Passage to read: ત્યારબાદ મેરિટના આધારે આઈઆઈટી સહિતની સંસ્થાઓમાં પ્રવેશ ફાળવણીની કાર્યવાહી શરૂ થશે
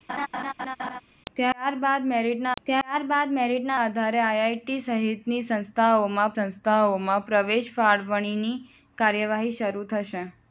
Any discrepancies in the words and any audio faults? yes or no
yes